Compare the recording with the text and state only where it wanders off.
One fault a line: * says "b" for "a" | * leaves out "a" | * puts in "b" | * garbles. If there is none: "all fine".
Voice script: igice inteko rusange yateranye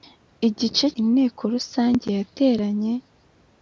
all fine